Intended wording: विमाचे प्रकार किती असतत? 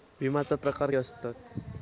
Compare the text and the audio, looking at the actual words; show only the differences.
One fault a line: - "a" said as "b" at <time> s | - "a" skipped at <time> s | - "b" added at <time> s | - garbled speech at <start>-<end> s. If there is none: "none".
- "किती" skipped at 0.9 s